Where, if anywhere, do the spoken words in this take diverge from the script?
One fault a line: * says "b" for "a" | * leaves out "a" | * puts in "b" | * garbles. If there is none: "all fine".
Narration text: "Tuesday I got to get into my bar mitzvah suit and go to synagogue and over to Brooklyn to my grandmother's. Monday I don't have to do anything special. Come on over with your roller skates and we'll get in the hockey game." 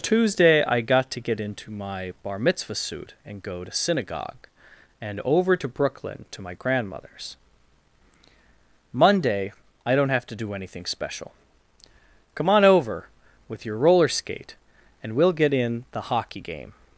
* says "skate" for "skates"